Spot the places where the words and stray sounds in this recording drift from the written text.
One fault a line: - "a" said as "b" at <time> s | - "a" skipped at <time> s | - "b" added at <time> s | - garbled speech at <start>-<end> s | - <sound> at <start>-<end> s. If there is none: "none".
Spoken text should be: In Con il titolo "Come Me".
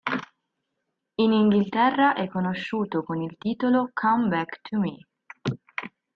- "Inghilterra è conosciuto" added at 1.3 s
- "Back to" added at 4.3 s